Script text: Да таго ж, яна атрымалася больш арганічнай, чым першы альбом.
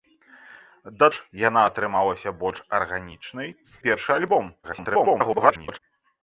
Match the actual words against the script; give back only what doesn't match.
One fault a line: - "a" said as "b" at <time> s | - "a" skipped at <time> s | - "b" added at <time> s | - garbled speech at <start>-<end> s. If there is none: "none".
- "таго" skipped at 1.1 s
- "чым" skipped at 3.5 s
- garbled speech at 4.6-5.8 s